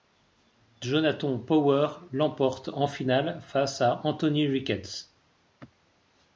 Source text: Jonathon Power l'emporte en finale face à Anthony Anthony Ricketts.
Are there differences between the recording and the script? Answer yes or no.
yes